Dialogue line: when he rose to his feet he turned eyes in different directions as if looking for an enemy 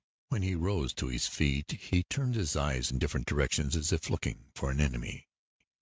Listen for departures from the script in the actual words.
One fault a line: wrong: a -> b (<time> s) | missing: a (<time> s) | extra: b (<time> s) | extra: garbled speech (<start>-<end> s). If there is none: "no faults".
extra: his (2.3 s)